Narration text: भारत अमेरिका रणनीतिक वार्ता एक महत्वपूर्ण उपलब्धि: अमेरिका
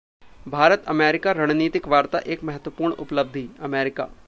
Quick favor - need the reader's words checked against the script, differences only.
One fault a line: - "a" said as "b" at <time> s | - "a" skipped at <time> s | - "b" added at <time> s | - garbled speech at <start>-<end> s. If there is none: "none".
none